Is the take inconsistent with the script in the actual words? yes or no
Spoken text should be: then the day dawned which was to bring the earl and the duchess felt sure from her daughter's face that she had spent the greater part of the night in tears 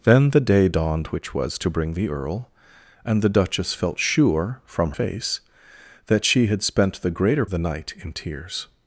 yes